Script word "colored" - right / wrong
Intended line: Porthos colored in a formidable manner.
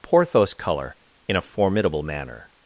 wrong